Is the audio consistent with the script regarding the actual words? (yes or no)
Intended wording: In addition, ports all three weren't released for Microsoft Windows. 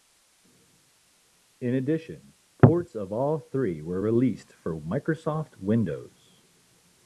no